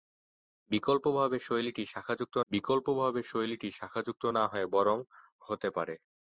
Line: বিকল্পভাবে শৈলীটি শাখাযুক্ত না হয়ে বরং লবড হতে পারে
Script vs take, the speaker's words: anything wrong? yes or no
yes